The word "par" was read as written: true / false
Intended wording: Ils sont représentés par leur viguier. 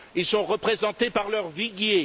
true